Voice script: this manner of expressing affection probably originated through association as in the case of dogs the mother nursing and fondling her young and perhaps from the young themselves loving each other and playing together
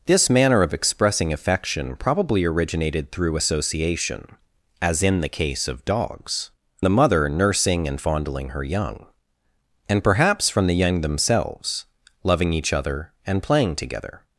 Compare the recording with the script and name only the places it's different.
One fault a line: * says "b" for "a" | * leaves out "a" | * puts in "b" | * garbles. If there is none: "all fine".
all fine